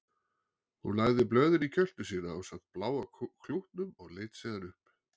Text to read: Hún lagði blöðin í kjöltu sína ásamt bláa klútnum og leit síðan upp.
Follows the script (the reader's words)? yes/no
yes